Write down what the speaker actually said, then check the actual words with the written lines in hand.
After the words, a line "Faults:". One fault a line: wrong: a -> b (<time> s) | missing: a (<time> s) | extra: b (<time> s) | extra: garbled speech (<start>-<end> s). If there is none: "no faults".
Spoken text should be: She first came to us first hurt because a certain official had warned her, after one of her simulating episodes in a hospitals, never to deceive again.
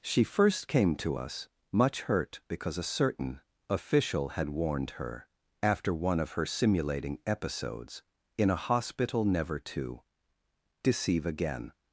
She first came to us much hurt because a certain official had warned her, after one of her simulating episodes in a hospital, never to deceive again.
Faults:
wrong: first -> much (1.7 s)
wrong: hospitals -> hospital (8.5 s)